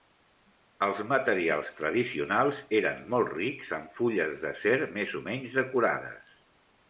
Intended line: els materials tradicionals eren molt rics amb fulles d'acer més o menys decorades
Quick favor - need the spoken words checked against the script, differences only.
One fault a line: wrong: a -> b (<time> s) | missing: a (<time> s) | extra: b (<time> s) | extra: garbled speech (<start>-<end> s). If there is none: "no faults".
no faults